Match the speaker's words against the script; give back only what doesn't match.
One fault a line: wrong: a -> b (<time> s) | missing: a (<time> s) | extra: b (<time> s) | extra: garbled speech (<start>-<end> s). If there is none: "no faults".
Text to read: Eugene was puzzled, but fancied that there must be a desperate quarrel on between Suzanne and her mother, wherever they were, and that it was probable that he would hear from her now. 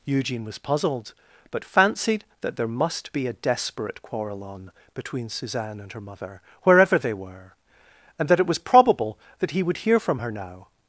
no faults